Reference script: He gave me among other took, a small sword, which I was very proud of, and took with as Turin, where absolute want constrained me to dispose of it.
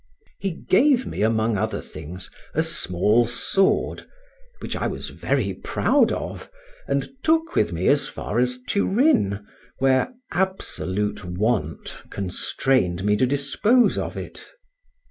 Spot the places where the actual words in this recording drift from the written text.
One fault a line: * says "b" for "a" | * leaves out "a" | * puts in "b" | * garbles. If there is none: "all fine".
* says "things" for "took"
* puts in "me as far"